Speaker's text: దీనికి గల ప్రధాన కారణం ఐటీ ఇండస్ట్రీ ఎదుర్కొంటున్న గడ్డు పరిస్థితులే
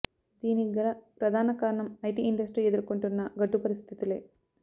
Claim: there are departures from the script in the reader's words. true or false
false